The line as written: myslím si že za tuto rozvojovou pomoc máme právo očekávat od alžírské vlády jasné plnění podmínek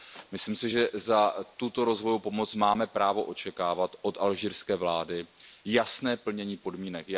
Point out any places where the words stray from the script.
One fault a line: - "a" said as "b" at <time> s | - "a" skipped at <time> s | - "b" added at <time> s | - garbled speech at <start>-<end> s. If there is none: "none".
none